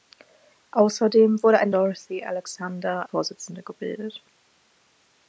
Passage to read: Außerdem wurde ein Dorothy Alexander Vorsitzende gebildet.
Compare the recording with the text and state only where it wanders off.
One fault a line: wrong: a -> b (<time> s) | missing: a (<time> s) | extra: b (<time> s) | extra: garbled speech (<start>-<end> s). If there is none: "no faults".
no faults